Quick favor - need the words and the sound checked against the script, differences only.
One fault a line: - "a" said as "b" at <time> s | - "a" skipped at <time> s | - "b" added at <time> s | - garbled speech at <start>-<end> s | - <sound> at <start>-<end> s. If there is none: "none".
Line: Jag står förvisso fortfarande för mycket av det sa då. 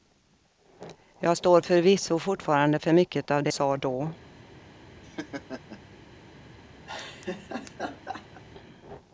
- laugh at 5.0-5.8 s
- laugh at 6.9-8.4 s